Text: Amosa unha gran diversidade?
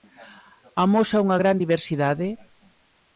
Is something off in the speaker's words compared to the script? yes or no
no